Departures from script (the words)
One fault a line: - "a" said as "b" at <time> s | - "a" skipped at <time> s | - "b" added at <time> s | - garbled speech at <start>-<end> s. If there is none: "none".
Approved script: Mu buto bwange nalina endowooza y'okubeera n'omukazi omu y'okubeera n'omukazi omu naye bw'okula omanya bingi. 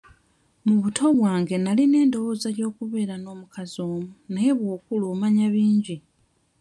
- "y'okubeera n'omukazi omu" skipped at 4.0 s